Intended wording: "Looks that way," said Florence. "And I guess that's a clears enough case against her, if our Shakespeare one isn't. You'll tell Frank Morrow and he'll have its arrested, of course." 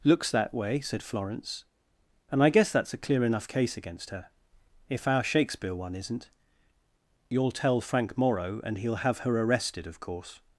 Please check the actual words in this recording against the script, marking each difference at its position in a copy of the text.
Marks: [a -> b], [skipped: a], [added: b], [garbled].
"Looks that way," said Florence. "And I guess that's a [clears -> clear] enough case against her, if our Shakespeare one isn't. You'll tell Frank Morrow and he'll have [its -> her] arrested, of course."